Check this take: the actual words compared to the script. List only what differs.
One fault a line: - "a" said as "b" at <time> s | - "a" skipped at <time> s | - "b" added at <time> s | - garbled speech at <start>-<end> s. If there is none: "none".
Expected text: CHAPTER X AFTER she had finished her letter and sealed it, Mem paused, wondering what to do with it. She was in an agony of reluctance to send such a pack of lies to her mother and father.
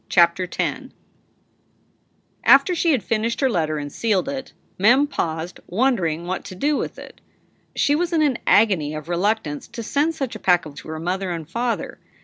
- "lies" skipped at 10.8 s